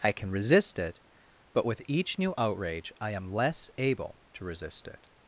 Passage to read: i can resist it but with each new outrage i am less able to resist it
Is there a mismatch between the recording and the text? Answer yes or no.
no